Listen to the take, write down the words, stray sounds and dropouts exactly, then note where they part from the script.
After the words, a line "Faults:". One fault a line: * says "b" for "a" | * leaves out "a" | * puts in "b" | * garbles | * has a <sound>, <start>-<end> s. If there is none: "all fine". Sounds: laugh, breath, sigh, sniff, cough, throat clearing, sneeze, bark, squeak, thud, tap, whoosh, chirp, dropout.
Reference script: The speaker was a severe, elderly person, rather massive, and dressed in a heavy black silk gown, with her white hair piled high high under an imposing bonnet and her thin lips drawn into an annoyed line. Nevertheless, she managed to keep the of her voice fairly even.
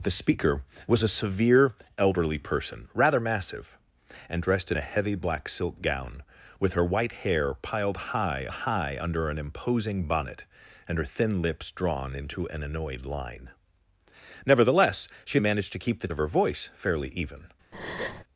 The speaker was a severe, elderly person, rather massive, and dressed in a heavy black silk gown, with her white hair piled high high under an imposing bonnet and her thin lips drawn into an annoyed line. Nevertheless, she managed to keep the of her voice fairly even.
Faults:
* has a breath, 17.7-18.2 s